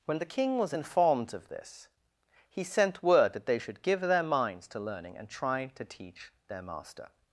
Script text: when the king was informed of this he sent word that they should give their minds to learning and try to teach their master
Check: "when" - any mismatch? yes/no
no